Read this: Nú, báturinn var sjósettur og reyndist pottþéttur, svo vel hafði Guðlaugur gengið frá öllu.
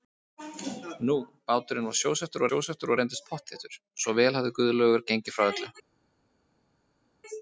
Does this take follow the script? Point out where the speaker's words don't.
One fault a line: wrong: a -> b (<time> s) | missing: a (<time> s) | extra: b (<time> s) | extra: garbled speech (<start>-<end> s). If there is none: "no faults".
extra: sjósettur (2.5 s)